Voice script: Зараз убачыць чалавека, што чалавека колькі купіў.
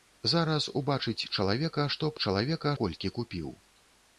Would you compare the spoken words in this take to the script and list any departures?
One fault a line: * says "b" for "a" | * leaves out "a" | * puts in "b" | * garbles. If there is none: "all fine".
all fine